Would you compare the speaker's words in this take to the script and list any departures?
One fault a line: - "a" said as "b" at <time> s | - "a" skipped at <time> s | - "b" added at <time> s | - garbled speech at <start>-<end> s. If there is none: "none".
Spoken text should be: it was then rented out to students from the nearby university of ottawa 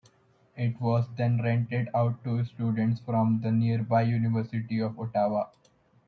none